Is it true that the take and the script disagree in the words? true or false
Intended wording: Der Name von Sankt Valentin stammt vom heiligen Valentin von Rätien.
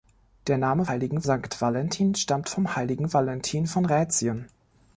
true